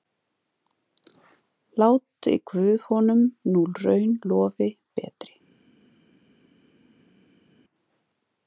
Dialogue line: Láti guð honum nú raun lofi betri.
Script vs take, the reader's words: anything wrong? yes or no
no